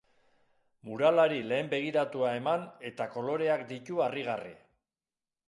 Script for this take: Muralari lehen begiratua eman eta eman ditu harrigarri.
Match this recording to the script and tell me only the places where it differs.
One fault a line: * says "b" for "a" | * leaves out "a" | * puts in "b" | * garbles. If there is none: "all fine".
* says "koloreak" for "eman"